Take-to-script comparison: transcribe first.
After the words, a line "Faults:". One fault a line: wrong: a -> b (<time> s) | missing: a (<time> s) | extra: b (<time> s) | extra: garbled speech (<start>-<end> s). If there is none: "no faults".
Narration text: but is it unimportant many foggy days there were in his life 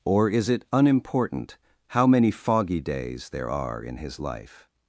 or is it unimportant how many foggy days there are in his life
Faults:
wrong: but -> or (0.0 s)
extra: how (1.9 s)
wrong: were -> are (3.5 s)